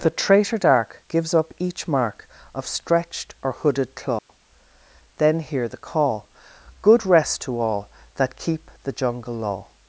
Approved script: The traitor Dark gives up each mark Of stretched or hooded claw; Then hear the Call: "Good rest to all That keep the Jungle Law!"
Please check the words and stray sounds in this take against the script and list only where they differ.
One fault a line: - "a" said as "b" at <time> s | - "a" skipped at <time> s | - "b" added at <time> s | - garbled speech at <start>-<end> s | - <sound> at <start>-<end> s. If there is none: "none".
- dropout at 4.2-4.3 s